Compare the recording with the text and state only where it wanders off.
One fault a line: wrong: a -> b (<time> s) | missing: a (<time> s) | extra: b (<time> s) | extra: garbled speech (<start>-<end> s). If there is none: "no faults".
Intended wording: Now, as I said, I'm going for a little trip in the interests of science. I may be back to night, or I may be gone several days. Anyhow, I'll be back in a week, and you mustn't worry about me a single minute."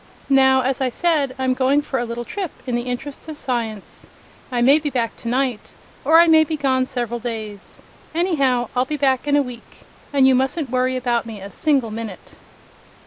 no faults